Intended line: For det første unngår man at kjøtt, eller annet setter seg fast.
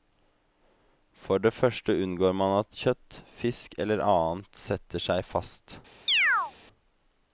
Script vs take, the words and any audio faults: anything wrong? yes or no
yes